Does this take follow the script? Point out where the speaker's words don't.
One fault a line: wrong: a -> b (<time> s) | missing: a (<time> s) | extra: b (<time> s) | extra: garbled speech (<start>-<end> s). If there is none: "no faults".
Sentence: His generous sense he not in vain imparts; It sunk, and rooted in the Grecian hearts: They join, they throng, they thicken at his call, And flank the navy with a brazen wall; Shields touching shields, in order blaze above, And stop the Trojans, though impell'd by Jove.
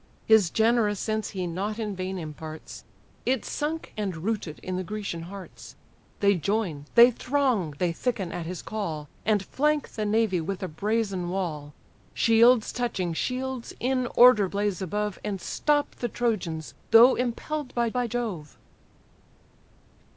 extra: by (17.9 s)